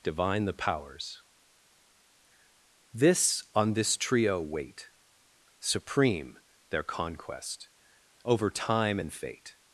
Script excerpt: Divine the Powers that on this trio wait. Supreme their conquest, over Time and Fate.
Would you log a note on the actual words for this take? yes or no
yes